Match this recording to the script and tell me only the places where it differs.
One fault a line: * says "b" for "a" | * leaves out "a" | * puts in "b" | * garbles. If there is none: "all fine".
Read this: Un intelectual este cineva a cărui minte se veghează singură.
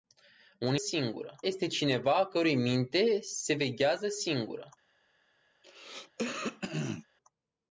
* says "singură" for "intelectual"